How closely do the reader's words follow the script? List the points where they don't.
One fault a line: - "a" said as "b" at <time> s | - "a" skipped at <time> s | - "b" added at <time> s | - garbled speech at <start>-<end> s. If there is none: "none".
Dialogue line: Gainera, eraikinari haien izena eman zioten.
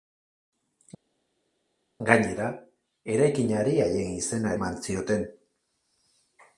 none